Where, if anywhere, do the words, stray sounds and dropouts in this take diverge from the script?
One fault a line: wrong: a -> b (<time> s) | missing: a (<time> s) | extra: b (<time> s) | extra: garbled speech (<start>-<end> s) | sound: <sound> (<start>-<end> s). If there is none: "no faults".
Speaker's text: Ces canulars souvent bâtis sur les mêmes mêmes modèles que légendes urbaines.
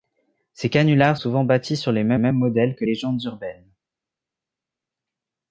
no faults